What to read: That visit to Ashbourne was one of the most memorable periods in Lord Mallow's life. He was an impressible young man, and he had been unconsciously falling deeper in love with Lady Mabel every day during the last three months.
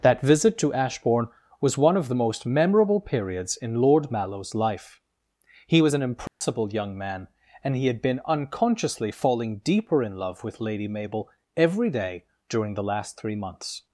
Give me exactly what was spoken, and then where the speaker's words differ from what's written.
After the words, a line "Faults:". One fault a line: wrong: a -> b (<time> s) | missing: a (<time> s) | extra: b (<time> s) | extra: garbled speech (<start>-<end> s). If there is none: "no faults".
That visit to Ashbourne was one of the most memorable periods in Lord Mallow's life. He was an impressible young man, and he had been unconsciously falling deeper in love with Lady Mabel every day during the last three months.
Faults:
no faults